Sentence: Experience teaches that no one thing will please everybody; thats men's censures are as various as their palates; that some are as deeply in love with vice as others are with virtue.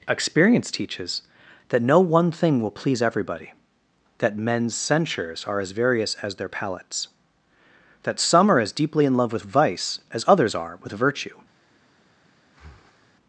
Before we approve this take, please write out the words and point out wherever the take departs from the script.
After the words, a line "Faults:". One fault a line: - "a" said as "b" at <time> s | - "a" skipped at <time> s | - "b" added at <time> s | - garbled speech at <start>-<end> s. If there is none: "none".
Experience teaches that no one thing will please everybody; that men's censures are as various as their palates; that some are as deeply in love with vice as others are with virtue.
Faults:
- "thats" said as "that" at 4.2 s